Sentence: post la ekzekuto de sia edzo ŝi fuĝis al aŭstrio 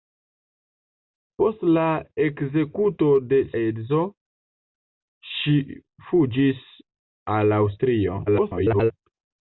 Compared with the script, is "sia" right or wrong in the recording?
wrong